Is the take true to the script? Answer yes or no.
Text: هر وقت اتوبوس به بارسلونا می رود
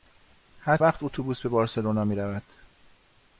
yes